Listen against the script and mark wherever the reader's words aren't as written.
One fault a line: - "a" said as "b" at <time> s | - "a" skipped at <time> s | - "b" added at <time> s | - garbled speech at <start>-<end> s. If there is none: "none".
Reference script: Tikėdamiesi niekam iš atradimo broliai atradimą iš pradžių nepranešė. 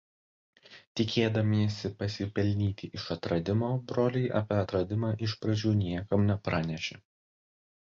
- "niekam" said as "pasipelnyti" at 2.0 s
- "apie" added at 4.4 s
- "niekam" added at 5.8 s